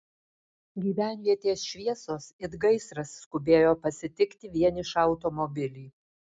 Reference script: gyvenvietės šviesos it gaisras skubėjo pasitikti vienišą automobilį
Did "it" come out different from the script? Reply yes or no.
no